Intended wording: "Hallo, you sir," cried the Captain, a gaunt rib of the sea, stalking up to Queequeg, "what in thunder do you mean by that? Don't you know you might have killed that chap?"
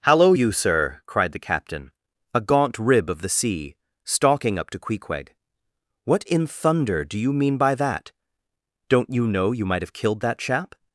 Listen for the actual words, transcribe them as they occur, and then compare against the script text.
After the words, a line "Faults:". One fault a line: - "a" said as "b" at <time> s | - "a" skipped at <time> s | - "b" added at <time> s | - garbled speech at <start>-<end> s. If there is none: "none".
"Hallo, you sir," cried the Captain, a gaunt rib of the sea, stalking up to Queequeg, "what in thunder do you mean by that? Don't you know you might have killed that chap?"
Faults:
none